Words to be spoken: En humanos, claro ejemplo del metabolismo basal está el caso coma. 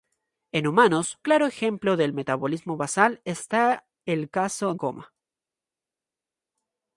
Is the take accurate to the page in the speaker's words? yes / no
yes